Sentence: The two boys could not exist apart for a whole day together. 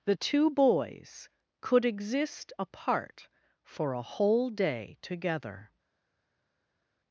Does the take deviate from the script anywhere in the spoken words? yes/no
yes